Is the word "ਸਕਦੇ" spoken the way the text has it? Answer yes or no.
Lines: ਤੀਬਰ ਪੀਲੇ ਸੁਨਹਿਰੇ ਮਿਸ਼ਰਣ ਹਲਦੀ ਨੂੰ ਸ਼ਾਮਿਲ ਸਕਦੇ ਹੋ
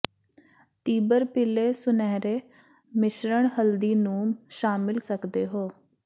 yes